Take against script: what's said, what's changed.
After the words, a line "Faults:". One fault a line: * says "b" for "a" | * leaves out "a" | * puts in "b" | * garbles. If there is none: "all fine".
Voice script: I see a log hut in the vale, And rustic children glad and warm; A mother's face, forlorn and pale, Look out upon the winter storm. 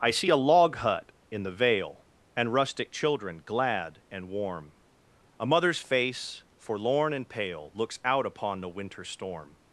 I see a log hut in the vale, And rustic children glad and warm; A mother's face, forlorn and pale, Looks out upon the winter storm.
Faults:
* says "Looks" for "Look"